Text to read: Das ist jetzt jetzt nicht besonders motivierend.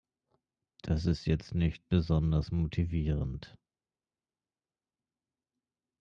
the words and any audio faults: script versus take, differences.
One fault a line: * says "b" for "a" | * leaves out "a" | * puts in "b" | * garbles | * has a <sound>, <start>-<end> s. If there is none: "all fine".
* leaves out "jetzt"